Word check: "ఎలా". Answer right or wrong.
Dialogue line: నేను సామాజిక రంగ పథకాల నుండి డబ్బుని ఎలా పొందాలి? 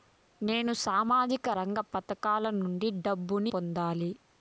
wrong